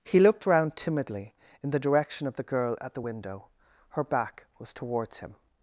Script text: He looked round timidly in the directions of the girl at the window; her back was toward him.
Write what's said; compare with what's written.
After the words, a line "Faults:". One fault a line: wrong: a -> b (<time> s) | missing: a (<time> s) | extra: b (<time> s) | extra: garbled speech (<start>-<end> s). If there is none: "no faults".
He looked round timidly in the direction of the girl at the window; her back was towards him.
Faults:
wrong: directions -> direction (1.8 s)
wrong: toward -> towards (4.7 s)